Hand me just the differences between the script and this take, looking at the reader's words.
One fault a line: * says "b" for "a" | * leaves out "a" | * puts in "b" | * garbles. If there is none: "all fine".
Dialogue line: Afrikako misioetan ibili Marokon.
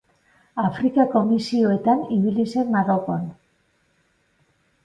* puts in "zen"